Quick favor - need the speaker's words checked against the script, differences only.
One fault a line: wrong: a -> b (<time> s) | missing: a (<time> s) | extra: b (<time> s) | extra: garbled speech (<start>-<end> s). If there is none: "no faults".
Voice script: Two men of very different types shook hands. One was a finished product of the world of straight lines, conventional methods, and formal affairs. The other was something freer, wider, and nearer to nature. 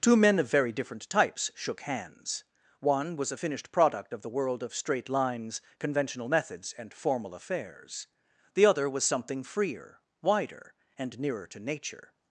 no faults